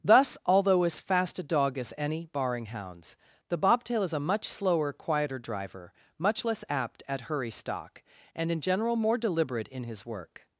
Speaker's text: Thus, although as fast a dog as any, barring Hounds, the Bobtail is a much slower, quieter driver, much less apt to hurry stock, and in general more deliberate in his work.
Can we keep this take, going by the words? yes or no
no